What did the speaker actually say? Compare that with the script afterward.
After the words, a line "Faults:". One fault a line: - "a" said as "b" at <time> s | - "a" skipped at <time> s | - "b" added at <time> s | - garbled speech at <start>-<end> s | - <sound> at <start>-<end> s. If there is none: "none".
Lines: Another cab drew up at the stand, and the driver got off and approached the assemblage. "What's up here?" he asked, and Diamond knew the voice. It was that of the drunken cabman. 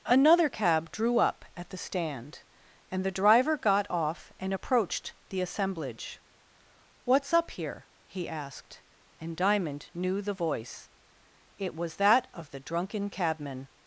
Another cab drew up at the stand, and the driver got off and approached the assemblage. "What's up here?" he asked, and Diamond knew the voice. It was that of the drunken cabman.
Faults:
none